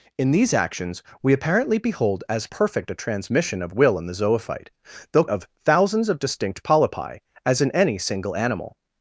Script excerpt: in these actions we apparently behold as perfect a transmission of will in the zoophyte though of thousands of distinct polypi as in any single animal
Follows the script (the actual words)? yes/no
yes